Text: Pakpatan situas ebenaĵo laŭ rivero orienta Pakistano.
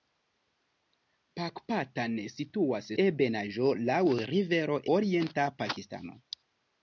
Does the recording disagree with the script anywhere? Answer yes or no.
no